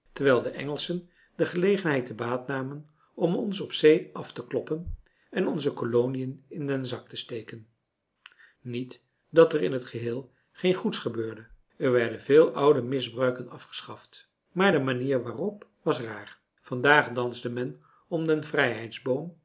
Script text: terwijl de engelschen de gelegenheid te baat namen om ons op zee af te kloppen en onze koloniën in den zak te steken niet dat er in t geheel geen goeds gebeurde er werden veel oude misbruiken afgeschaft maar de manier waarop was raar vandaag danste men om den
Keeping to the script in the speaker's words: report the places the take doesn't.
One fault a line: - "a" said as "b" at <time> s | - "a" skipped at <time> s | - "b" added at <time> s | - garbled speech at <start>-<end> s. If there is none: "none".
none